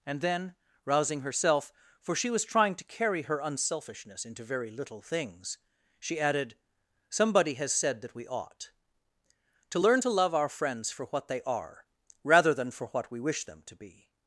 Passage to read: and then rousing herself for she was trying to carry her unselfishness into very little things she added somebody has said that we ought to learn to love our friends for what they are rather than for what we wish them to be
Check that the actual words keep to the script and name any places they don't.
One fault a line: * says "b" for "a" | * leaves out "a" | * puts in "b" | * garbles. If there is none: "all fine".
all fine